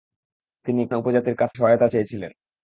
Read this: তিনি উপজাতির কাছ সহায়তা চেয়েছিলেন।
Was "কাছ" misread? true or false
false